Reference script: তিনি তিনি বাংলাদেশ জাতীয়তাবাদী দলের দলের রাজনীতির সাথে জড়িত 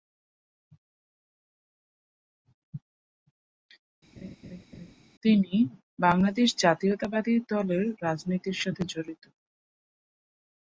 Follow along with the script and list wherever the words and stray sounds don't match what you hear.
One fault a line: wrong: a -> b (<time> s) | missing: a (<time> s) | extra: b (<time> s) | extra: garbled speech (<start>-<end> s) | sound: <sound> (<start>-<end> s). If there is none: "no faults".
sound: laugh (4.2-4.9 s)
missing: তিনি (5.5 s)
missing: দলের (7.8 s)